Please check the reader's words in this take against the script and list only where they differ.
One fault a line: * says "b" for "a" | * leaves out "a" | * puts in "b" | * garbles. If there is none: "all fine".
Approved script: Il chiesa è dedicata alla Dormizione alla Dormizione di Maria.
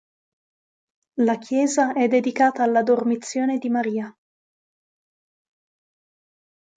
* says "La" for "Il"
* leaves out "alla Dormizione"